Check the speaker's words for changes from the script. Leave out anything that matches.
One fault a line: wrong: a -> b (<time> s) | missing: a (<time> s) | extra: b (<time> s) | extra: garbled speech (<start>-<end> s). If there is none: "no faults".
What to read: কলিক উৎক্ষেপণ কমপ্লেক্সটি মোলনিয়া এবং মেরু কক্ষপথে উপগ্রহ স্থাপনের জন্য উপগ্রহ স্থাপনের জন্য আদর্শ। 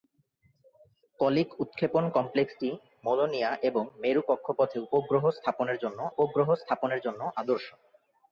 no faults